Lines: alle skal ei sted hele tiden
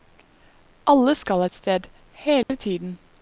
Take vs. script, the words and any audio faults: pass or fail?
fail